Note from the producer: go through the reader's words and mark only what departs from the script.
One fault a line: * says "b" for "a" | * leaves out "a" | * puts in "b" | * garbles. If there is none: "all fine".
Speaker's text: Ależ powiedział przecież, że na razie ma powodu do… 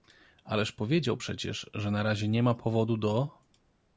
* puts in "nie"